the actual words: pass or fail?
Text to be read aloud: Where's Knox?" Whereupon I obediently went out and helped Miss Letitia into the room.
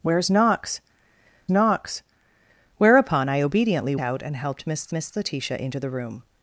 fail